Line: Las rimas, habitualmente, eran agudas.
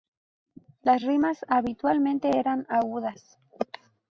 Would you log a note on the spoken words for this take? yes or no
no